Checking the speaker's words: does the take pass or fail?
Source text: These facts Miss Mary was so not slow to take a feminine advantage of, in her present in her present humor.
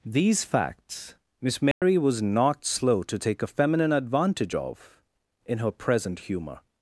fail